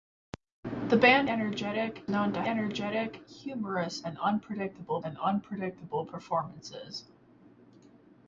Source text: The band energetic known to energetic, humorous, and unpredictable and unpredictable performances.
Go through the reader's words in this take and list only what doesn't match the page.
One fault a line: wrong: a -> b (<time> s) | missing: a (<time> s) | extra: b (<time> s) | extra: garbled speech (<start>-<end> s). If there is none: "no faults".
no faults